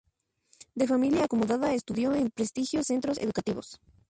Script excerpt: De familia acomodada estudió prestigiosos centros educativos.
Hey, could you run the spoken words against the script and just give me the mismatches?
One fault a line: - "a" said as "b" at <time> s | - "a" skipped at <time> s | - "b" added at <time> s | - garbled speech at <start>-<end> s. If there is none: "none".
- "en" added at 2.1 s